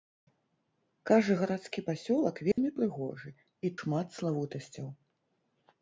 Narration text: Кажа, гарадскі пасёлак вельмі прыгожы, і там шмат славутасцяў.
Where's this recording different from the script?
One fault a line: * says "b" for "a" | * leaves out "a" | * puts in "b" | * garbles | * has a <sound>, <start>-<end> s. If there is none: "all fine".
* has a dropout, 2.5-2.6 s
* leaves out "там"